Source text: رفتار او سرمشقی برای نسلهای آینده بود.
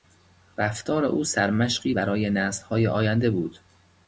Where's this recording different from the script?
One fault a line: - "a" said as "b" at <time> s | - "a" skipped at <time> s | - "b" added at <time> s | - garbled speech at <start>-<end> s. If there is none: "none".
none